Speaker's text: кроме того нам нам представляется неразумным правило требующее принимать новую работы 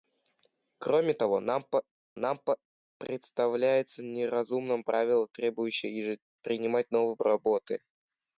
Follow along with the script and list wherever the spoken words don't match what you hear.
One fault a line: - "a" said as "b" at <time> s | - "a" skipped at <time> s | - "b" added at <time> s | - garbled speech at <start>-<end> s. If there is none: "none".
none